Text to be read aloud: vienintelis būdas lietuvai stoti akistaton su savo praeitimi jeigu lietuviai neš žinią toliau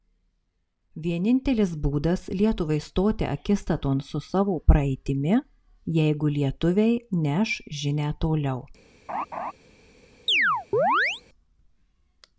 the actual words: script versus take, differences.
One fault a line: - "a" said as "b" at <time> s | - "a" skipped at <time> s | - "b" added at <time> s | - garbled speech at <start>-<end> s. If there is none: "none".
none